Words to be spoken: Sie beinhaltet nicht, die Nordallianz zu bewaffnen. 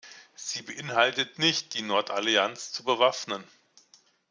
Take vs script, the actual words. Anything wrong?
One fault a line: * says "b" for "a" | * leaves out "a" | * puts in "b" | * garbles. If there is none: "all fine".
all fine